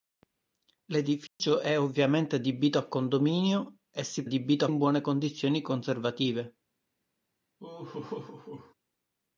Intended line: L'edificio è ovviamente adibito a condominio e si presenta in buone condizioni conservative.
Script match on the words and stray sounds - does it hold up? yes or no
no